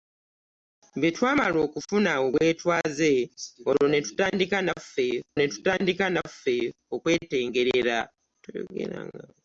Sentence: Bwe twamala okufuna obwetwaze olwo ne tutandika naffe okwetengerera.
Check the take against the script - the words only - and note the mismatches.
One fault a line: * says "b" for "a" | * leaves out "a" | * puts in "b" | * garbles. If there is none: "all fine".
* puts in "ne tutandika naffe"